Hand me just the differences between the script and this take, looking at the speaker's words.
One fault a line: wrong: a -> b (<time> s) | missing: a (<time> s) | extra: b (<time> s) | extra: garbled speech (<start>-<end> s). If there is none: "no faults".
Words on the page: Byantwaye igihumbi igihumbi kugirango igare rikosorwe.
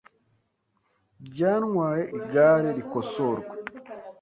missing: igihumbi igihumbi kugirango (2.0 s)